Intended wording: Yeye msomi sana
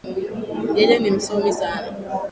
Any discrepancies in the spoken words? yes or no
yes